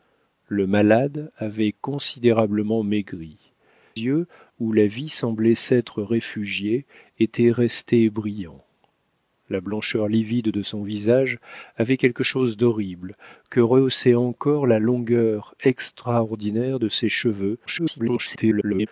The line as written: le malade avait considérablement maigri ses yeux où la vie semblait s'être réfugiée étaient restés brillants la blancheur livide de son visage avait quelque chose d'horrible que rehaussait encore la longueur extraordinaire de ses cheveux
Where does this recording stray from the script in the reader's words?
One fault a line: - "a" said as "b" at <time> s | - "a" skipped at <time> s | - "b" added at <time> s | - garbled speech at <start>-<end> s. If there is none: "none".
- "ses" skipped at 3.4 s
- garbled speech at 17.7-18.9 s